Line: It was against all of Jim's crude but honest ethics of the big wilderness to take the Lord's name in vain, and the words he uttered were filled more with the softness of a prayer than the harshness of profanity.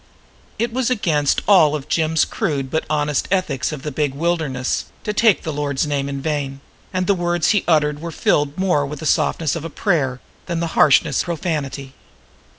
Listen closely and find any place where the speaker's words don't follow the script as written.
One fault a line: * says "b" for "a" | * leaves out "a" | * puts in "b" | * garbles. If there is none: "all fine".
* leaves out "of"